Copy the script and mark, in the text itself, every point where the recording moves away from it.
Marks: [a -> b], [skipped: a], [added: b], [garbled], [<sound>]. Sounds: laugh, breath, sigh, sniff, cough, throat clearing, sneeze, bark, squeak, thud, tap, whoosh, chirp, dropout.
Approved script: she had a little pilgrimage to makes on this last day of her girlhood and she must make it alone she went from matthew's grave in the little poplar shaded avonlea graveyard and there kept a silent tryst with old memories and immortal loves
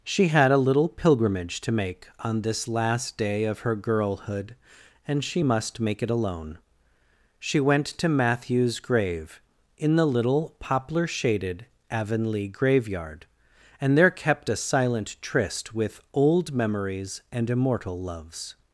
she had a little pilgrimage to [makes -> make] on this last day of her girlhood and she must make it alone she went [from -> to] matthew's grave in the little poplar shaded avonlea graveyard and there kept a silent tryst with old memories and immortal loves